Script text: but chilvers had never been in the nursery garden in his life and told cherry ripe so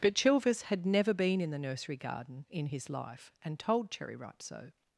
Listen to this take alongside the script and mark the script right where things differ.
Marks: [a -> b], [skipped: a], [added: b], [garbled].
but chilvers had never been in the nursery garden in his life and told cherry ripe so